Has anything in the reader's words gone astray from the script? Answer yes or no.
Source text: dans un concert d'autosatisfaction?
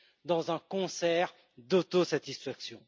no